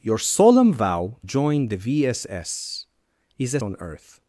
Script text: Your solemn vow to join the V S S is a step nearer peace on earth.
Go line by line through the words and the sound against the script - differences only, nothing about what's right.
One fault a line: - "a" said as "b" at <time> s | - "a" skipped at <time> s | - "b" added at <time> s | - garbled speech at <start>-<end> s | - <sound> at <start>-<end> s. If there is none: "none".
- "to" skipped at 1.2 s
- "step nearer peace" skipped at 3.6 s